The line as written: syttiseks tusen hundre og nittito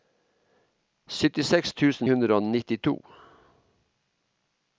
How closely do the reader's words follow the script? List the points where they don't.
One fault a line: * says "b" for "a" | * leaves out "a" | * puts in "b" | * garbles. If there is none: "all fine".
all fine